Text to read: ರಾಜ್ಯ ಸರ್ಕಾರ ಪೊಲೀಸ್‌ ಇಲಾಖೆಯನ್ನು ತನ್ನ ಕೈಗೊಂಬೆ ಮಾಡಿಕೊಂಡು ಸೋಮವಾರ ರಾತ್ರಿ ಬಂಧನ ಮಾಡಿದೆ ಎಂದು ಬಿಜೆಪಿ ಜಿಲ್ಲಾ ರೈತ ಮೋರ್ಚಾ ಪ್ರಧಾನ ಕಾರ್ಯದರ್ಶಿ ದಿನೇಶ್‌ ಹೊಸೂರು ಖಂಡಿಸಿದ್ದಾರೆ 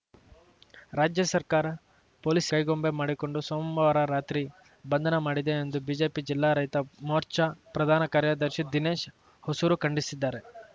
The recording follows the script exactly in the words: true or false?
false